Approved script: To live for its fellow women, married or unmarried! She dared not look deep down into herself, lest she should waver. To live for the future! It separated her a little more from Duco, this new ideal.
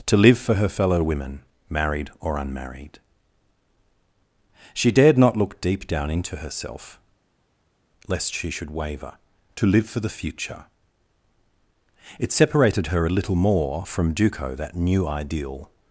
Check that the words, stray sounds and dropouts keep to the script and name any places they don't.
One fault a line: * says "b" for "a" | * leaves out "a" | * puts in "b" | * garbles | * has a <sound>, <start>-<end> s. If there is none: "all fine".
* says "her" for "its"
* says "that" for "this"